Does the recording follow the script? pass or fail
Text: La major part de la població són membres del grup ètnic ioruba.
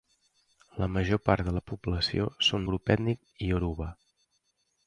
fail